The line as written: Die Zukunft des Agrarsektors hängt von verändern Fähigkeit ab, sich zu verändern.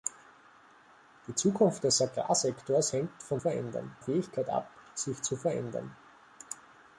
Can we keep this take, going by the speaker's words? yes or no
yes